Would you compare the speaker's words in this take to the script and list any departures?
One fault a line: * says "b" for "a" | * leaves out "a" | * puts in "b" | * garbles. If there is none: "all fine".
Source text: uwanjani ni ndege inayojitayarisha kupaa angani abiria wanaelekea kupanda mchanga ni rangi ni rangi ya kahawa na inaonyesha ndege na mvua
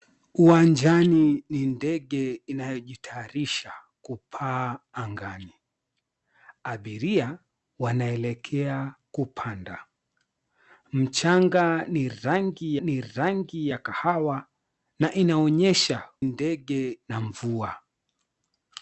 all fine